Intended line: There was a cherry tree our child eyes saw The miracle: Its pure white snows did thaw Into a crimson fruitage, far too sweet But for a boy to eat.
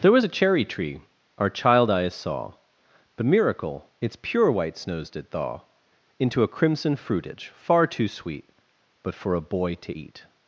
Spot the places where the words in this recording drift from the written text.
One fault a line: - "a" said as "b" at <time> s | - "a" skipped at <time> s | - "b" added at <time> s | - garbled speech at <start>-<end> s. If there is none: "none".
none